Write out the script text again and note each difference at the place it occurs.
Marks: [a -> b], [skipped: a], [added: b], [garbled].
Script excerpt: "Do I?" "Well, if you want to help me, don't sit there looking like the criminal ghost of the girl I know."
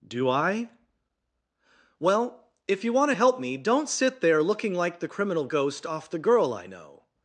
"Do I?" "Well, if you want to help me, don't sit there looking like the criminal ghost [of -> off] the girl I know."